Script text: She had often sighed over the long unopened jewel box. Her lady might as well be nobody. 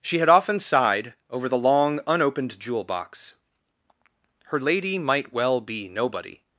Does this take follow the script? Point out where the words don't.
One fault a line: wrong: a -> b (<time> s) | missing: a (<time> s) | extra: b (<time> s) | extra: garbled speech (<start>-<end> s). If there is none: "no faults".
missing: as (5.3 s)